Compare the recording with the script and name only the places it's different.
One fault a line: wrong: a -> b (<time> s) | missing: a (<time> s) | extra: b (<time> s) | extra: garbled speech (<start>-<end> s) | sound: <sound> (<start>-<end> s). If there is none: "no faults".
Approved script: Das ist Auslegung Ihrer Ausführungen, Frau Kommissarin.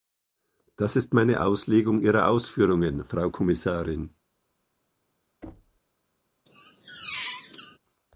extra: meine (1.1 s)
sound: thud (5.4-5.8 s)
sound: squeak (6.5-7.8 s)